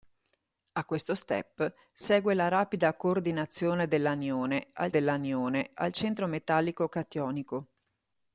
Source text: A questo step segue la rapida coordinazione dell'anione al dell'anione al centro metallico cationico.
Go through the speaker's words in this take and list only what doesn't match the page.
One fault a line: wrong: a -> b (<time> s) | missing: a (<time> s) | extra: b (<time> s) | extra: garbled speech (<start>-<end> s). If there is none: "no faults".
no faults